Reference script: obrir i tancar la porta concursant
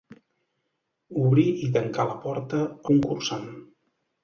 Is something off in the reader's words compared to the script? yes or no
no